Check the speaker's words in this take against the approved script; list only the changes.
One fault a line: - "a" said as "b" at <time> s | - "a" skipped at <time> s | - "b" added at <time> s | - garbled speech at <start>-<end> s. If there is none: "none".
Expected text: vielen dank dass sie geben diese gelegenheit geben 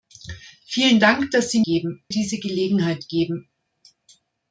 none